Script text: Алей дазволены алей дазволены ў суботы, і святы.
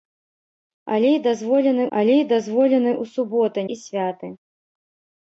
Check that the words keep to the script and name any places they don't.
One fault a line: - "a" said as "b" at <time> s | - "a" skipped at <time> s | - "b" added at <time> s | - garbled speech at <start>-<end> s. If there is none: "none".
none